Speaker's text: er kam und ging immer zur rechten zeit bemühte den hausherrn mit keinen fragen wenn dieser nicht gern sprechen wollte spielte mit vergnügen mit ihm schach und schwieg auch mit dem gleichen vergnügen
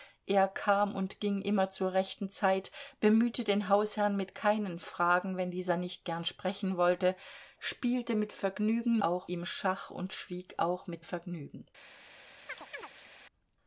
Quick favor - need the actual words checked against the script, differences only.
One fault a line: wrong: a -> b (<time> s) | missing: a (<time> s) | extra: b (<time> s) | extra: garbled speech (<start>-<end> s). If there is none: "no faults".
wrong: mit -> auch (9.0 s)
missing: dem gleichen (11.1 s)